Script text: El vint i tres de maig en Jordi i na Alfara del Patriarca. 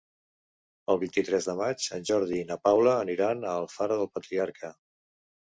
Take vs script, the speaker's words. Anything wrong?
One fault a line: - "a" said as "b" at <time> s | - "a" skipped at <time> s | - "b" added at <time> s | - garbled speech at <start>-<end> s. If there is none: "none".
- "Paula aniran a" added at 2.7 s